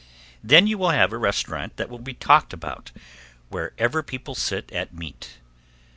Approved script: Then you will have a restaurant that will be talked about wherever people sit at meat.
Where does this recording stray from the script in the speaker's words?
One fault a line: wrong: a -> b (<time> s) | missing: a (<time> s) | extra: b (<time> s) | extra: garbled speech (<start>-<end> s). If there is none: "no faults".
no faults